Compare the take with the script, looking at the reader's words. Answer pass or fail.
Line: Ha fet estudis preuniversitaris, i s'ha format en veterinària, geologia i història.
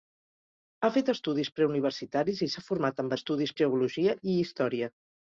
fail